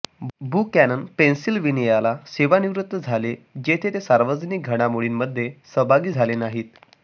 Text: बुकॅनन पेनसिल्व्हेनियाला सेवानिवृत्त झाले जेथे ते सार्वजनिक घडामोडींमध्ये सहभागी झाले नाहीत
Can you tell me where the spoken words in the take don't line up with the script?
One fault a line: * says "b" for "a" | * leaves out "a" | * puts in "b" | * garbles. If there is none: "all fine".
all fine